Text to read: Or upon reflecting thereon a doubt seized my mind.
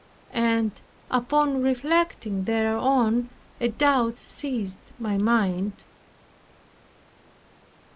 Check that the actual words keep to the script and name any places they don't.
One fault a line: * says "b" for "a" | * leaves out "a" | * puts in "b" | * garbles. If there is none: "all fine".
* says "And" for "Or"